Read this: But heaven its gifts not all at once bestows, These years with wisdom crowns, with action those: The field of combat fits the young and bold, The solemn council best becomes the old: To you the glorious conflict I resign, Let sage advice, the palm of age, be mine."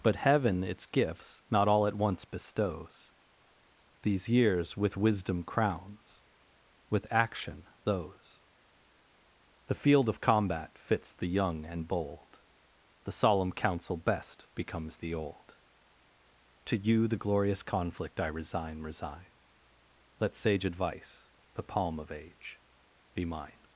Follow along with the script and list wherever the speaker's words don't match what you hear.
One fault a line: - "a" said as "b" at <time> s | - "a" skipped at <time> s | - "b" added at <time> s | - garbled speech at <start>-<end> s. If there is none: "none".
- "resign" added at 18.8 s